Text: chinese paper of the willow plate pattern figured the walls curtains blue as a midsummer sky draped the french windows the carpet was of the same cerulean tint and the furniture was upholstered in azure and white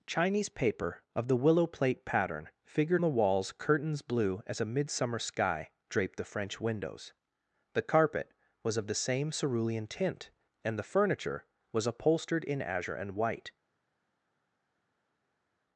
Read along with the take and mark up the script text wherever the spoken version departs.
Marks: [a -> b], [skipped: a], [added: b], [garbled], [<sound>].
chinese paper of the willow plate pattern figured the walls curtains blue as a midsummer sky draped the french windows the carpet was of the same cerulean tint and the furniture was upholstered in azure and white